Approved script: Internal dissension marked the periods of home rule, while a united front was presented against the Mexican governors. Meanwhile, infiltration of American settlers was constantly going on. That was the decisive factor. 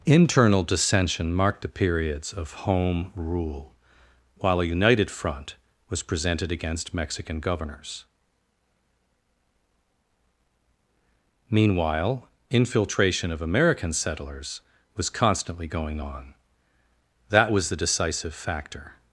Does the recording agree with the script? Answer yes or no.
no